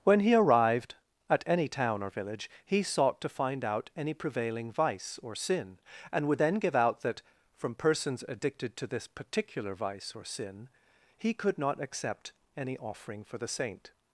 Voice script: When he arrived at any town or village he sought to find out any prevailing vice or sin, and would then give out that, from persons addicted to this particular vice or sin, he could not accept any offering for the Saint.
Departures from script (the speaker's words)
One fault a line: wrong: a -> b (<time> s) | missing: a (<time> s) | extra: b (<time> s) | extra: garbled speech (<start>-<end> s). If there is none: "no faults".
no faults